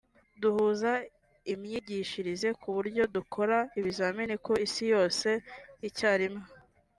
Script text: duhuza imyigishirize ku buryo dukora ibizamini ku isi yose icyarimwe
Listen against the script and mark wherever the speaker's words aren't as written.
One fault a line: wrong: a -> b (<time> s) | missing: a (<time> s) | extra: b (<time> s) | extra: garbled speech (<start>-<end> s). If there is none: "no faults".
no faults